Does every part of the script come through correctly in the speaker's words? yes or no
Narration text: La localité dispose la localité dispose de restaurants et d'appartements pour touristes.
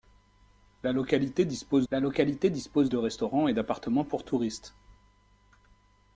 yes